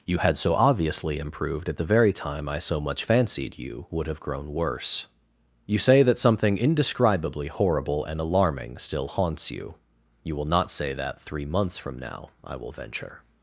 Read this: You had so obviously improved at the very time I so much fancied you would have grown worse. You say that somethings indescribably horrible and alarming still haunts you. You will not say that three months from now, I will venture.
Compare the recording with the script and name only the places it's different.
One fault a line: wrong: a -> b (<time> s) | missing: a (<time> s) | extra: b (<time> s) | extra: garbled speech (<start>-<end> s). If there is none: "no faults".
wrong: somethings -> something (6.2 s)